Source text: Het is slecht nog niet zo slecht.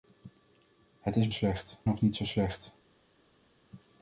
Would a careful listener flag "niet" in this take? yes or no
no